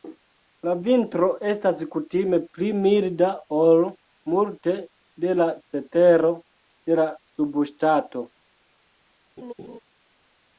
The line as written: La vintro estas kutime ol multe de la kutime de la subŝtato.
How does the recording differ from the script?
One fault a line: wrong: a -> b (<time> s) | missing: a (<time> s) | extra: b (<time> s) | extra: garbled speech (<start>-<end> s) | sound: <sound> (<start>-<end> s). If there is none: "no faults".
extra: pli milda (2.6 s)
wrong: kutime -> cetero (5.7 s)
sound: laugh (9.4-9.8 s)